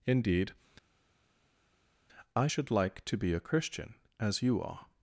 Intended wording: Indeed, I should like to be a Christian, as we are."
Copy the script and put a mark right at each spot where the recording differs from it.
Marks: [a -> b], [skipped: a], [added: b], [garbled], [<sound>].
Indeed, I should like to be a Christian, as [we -> you] are."